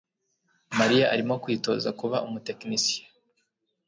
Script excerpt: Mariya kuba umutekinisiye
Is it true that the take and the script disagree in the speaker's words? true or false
true